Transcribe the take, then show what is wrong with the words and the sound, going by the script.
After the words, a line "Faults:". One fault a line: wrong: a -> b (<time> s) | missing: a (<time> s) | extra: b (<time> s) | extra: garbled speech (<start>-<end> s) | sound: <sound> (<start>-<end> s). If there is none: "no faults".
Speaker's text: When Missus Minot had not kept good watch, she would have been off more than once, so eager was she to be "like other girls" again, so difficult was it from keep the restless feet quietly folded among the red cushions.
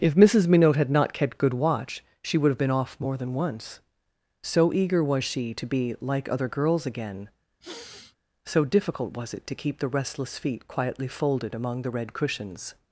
If Missus Minot had not kept good watch, she would have been off more than once, so eager was she to be "like other girls" again, so difficult was it to keep the restless feet quietly folded among the red cushions.
Faults:
wrong: When -> If (0.0 s)
sound: sniff (7.6-8.2 s)
wrong: from -> to (9.5 s)